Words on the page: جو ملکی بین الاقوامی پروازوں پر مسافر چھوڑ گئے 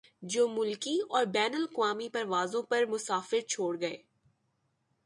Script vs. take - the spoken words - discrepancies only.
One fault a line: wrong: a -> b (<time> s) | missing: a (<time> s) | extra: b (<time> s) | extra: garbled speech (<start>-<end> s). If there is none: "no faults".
extra: اور (1.1 s)